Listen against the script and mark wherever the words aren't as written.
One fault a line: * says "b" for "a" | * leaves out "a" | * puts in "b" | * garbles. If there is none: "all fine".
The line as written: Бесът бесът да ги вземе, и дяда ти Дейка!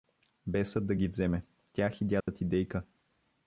* leaves out "бесът"
* puts in "тях"